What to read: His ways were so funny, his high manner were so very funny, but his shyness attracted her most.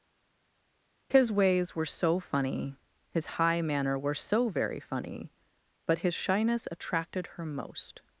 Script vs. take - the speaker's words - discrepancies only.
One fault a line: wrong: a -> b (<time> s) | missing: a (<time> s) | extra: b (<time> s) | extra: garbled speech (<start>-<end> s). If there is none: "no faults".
no faults